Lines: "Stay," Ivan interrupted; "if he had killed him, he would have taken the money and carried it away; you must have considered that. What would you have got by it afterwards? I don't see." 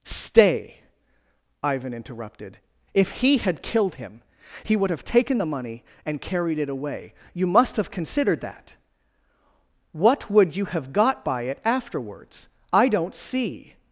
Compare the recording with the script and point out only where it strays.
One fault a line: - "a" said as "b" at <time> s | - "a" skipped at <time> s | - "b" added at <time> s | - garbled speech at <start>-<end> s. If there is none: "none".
none